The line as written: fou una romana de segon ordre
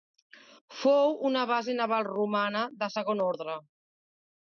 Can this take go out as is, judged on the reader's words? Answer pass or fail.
fail